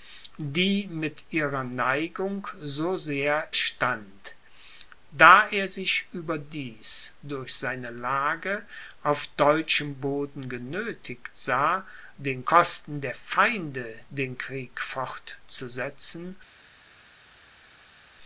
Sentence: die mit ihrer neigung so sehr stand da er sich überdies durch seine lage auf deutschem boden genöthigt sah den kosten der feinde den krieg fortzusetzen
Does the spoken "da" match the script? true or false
true